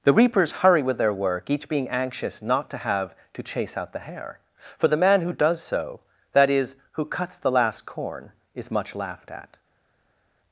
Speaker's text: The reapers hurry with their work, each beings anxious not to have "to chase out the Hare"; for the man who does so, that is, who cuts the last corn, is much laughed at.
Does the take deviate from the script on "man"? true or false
false